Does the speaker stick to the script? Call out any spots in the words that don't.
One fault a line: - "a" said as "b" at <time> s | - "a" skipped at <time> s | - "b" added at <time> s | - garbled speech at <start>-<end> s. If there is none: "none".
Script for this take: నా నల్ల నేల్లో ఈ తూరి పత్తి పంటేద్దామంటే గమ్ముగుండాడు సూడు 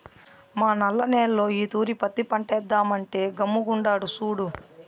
- "నా" said as "మా" at 0.6 s